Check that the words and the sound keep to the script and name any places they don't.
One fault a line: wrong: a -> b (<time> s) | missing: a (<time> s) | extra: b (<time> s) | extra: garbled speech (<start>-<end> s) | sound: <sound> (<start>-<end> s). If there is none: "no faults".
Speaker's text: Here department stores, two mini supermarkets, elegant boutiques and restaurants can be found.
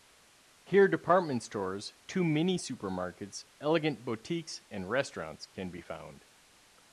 no faults